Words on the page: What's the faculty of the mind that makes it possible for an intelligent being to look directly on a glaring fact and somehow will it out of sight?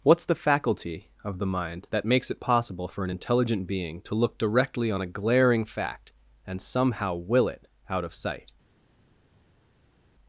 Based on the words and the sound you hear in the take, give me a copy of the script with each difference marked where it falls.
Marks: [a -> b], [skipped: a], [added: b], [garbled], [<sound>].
What's the faculty of the mind that makes it possible for an intelligent being to look directly on a glaring fact and somehow will it out of sight?